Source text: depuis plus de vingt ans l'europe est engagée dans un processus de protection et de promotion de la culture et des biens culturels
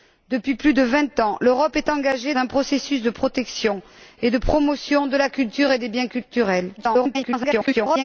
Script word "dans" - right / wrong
wrong